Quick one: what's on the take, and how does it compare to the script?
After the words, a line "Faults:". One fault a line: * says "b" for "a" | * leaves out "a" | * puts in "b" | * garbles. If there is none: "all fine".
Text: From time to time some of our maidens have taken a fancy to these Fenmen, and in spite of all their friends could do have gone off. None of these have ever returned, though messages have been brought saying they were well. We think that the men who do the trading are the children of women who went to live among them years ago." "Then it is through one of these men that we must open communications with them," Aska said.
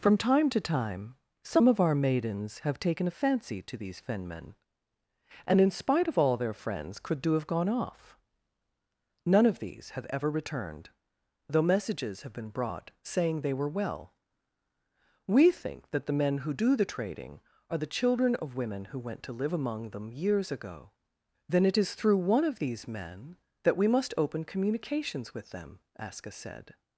From time to time some of our maidens have taken a fancy to these Fenmen, and in spite of all their friends could do have gone off. None of these have ever returned, though messages have been brought saying they were well. We think that the men who do the trading are the children of women who went to live among them years ago." "Then it is through one of these men that we must open communications with them," Aska said.
Faults:
all fine